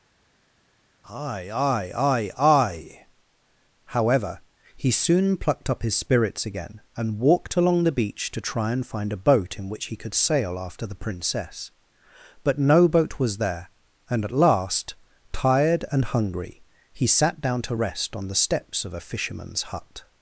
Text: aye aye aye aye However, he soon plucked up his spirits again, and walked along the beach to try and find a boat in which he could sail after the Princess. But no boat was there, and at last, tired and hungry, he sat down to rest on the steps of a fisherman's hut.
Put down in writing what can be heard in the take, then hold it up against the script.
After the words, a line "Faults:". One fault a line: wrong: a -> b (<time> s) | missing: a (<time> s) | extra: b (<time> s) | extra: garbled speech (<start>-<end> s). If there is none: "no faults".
aye aye aye aye However, he soon plucked up his spirits again, and walked along the beach to try and find a boat in which he could sail after the Princess. But no boat was there, and at last, tired and hungry, he sat down to rest on the steps of a fisherman's hut.
Faults:
no faults